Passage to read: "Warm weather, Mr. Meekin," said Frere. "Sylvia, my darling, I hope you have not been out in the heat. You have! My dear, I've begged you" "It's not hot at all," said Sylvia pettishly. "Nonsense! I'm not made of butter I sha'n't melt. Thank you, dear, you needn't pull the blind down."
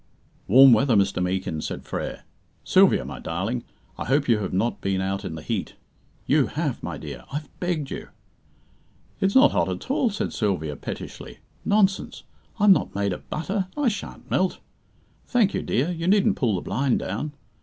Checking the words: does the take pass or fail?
pass